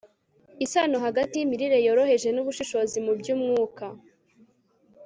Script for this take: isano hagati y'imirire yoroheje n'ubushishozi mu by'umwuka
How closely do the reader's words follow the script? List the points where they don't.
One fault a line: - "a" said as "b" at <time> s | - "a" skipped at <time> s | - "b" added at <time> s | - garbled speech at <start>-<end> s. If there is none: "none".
none